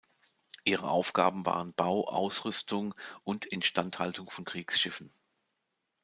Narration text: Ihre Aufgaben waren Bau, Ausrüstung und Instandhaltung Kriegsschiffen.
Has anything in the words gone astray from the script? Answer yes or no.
yes